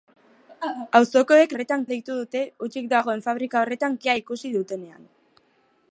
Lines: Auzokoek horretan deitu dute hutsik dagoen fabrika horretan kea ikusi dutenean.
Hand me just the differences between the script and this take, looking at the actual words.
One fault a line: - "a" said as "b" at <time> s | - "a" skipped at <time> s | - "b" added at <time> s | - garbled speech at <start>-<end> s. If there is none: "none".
none